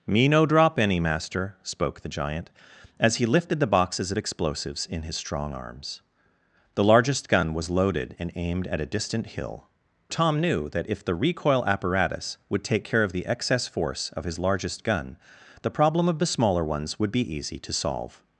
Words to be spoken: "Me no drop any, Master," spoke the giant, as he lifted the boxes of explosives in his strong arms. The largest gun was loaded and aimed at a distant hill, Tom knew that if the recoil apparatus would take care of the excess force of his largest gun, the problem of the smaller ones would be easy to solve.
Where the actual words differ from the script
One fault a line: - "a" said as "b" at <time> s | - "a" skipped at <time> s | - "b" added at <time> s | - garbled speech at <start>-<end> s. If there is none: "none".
none